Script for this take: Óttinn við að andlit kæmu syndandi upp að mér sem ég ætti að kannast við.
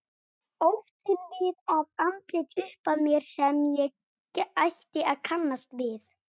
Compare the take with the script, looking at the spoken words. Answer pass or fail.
fail